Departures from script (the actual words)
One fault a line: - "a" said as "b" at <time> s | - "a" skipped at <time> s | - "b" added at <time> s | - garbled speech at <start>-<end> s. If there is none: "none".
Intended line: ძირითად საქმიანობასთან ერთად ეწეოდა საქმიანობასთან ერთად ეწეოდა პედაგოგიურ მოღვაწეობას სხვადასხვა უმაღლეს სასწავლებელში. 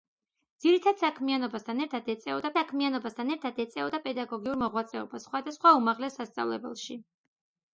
none